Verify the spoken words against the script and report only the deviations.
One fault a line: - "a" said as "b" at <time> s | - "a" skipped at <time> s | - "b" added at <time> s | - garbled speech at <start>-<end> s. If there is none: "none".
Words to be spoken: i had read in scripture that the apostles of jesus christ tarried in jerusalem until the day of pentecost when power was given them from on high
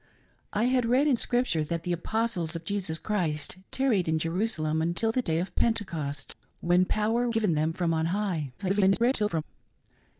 - "was" skipped at 7.3 s
- garbled speech at 8.6-9.4 s